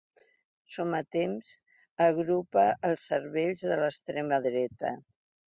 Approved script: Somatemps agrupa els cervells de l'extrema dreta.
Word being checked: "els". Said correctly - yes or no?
yes